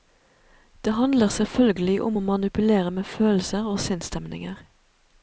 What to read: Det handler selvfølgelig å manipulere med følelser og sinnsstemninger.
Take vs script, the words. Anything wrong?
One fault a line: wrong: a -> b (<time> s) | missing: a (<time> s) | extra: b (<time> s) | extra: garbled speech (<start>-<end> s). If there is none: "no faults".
extra: om (2.0 s)